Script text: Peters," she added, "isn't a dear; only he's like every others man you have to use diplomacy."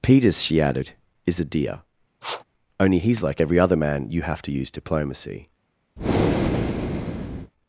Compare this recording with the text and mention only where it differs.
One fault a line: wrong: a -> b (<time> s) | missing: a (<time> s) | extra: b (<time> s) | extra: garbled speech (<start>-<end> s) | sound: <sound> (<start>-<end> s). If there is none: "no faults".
wrong: isn't -> is (1.3 s)
sound: sniff (2.2-2.4 s)
wrong: others -> other (3.6 s)
sound: breath (6.0-7.5 s)